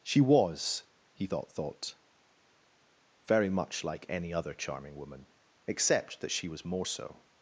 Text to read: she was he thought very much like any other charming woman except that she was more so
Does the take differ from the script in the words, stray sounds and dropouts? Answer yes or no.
yes